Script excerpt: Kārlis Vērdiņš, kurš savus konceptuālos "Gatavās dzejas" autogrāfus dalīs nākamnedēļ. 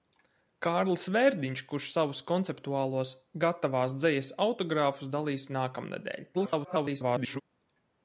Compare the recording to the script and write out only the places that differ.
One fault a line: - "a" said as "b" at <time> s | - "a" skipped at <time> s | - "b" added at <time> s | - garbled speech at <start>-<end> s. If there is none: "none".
- garbled speech at 6.3-7.4 s